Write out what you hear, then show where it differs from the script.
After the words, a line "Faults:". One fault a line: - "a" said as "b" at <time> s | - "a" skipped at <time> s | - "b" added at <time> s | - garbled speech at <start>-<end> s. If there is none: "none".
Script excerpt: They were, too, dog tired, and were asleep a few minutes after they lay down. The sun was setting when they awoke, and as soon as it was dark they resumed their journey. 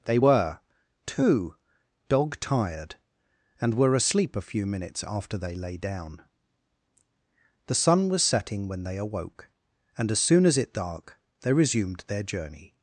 They were, too, dog tired, and were asleep a few minutes after they lay down. The sun was setting when they awoke, and as soon as it dark they resumed their journey.
Faults:
- "was" skipped at 10.7 s